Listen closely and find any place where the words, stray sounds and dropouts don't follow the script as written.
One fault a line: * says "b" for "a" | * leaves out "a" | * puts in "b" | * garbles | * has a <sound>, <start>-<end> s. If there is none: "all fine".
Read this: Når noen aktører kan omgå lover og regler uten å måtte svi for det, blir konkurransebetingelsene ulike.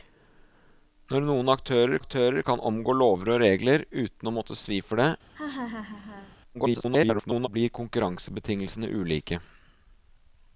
* puts in "aktører"
* has a laugh, 5.3-6.4 s
* garbles